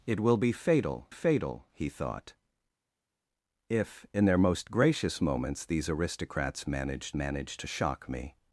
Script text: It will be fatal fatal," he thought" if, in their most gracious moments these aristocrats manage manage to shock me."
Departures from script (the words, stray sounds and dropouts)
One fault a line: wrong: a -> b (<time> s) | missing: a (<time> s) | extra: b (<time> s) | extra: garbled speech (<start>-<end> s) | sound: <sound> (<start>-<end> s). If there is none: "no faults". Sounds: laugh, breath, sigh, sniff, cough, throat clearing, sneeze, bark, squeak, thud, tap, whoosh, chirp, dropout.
no faults